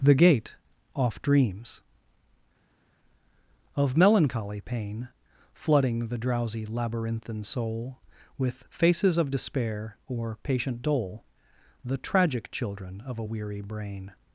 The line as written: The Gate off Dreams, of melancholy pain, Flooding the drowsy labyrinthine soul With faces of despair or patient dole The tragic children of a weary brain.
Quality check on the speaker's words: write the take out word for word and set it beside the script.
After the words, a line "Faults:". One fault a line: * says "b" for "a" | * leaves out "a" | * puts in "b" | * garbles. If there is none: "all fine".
The Gate off Dreams, of melancholy pain, Flooding the drowsy labyrinthine soul With faces of despair or patient dole The tragic children of a weary brain.
Faults:
all fine